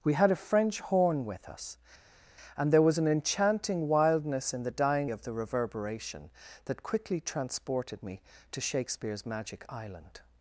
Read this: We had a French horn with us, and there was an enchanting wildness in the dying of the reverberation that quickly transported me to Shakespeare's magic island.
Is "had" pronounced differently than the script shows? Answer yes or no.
no